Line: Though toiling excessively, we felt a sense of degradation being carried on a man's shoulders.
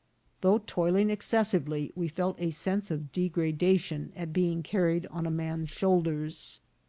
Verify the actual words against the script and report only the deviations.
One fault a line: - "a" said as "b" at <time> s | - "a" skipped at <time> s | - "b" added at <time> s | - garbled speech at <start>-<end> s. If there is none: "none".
- "at" added at 4.1 s